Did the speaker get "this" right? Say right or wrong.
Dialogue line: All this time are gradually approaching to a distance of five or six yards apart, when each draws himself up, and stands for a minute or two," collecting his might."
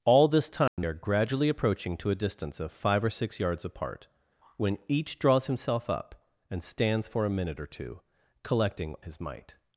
right